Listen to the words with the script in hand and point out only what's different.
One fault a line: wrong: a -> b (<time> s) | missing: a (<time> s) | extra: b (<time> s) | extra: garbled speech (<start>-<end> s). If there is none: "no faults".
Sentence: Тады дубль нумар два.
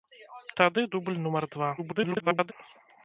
extra: garbled speech (1.8-2.5 s)